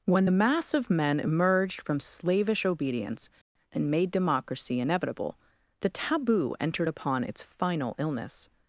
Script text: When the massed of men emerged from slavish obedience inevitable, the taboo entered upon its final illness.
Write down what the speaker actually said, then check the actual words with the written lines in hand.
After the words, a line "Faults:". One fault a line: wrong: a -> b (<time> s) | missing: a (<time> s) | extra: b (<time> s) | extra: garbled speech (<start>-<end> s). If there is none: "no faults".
When the mass of men emerged from slavish obedience and made democracy inevitable, the taboo entered upon its final illness.
Faults:
wrong: massed -> mass (0.3 s)
extra: and made democracy (3.7 s)